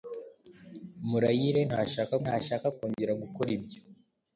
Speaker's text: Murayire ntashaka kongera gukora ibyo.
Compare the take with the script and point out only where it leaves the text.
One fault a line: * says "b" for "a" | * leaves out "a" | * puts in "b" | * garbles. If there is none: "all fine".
* puts in "ntashaka"